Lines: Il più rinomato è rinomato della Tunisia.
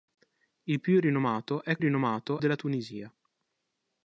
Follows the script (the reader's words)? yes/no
yes